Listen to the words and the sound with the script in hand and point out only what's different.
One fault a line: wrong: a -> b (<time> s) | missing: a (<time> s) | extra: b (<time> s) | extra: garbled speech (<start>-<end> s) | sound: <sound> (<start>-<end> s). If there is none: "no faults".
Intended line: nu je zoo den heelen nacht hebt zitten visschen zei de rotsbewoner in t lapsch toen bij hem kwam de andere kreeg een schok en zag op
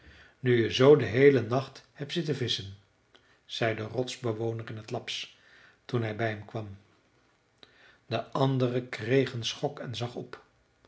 extra: hij (6.0 s)